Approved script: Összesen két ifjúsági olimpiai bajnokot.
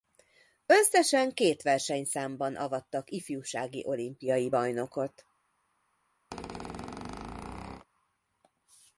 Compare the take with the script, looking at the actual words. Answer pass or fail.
fail